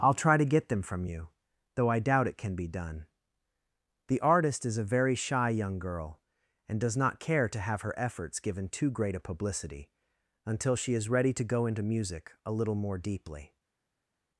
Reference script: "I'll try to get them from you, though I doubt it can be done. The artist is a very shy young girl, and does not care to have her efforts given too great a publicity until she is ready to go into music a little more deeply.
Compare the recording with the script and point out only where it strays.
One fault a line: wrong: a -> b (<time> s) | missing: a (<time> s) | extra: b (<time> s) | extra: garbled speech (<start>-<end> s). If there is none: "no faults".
no faults